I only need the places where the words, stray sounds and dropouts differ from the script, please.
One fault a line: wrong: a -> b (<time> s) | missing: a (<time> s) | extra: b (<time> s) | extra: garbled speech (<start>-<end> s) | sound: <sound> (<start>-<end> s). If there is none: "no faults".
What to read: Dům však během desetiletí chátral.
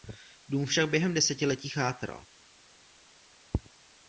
no faults